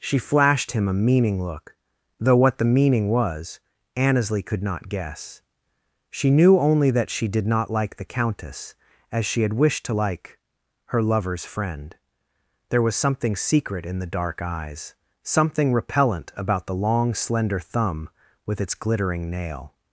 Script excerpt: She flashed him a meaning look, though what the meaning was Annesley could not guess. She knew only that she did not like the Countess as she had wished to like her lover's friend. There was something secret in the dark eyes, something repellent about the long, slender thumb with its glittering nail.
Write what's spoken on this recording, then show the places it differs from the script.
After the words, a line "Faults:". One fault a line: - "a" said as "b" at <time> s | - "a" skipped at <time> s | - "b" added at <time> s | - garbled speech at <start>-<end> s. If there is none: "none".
She flashed him a meaning look, though what the meaning was Annesley could not guess. She knew only that she did not like the Countess as she had wished to like her lover's friend. There was something secret in the dark eyes, something repellent about the long, slender thumb with its glittering nail.
Faults:
none